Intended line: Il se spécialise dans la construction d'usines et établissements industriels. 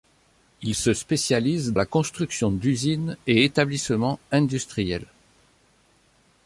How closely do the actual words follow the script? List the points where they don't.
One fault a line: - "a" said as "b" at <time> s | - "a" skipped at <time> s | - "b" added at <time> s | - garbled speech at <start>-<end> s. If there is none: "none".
- "dans" skipped at 1.7 s